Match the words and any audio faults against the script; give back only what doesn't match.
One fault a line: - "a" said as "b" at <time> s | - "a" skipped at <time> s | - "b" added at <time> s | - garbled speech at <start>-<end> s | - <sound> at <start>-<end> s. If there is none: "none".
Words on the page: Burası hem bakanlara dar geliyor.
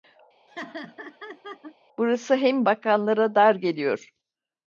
- laugh at 0.5-1.8 s